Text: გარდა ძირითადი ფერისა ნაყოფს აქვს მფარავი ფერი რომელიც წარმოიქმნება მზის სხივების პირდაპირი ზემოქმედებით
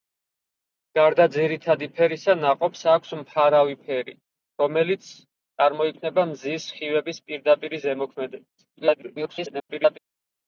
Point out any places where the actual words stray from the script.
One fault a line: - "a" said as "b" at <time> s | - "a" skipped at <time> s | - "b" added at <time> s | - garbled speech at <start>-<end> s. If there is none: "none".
- garbled speech at 8.8-10.0 s